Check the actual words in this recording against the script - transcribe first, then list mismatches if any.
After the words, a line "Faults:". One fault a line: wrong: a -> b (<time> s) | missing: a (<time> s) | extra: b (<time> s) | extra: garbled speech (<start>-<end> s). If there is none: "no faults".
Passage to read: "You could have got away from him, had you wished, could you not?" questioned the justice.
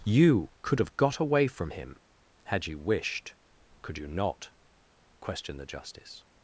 "You could have got away from him, had you wished, could you not?" questioned the justice.
Faults:
no faults